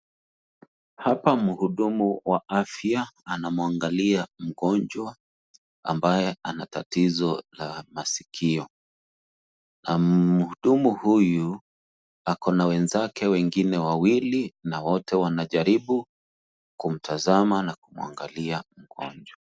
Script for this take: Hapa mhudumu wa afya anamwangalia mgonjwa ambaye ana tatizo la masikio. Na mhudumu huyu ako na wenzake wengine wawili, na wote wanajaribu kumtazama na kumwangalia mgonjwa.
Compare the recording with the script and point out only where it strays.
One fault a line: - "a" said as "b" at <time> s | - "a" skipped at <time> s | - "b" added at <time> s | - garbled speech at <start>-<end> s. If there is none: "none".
none